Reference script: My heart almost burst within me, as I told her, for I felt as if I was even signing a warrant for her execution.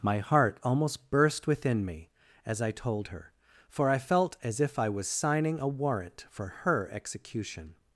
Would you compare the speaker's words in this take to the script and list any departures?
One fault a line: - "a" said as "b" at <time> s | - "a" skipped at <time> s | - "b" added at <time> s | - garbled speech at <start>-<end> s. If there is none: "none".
- "even" skipped at 5.1 s